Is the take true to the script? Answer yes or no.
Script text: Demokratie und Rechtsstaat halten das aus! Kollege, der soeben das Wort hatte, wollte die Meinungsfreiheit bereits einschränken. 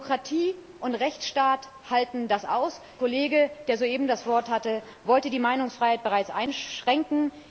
yes